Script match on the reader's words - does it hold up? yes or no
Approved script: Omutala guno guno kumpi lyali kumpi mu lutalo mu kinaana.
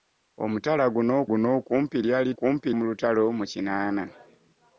yes